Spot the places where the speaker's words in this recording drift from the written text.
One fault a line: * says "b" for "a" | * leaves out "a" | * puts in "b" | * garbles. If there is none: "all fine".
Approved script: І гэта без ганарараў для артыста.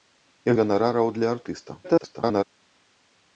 * leaves out "гэта без"
* garbles